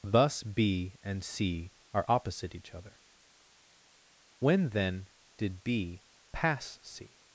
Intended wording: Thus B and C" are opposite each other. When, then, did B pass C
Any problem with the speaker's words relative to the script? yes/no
no